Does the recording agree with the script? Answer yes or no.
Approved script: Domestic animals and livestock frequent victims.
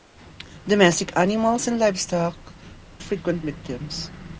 yes